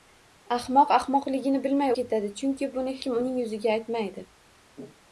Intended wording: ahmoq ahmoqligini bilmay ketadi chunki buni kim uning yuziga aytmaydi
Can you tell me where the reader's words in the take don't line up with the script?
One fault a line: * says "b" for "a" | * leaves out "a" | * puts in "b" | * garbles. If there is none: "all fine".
all fine